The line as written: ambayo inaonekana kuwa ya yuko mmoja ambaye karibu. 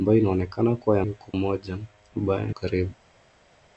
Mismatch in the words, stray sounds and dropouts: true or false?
false